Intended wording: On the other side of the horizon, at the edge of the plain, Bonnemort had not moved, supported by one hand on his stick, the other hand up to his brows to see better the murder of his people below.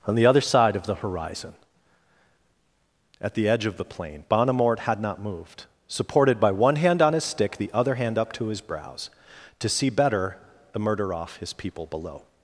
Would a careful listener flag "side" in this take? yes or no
no